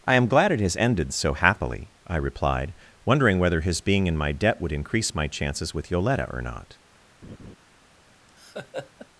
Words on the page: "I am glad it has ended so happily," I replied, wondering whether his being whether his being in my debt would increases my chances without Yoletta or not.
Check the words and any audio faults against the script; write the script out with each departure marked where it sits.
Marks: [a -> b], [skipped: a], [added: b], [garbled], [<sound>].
"I am glad it has ended so happily," I replied, wondering whether his being [skipped: whether his being] in my debt would [increases -> increase] my chances [without -> with] Yoletta or not. [laugh] [laugh]